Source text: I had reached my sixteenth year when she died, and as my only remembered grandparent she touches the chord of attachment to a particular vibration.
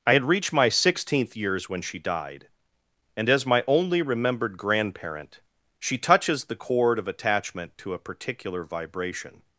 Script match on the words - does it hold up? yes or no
no